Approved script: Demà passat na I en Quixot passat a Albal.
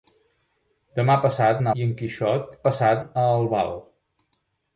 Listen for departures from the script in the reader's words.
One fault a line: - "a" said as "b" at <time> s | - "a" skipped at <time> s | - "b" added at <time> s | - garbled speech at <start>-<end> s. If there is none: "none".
none